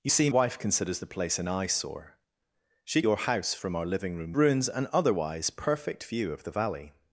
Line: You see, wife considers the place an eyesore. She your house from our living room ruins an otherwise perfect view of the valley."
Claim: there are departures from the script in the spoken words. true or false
false